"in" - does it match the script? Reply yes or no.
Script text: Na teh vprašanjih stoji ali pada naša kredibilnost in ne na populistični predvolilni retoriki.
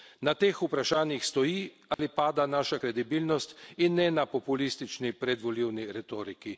yes